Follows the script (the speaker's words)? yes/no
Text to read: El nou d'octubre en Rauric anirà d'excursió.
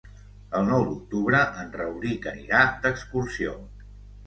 yes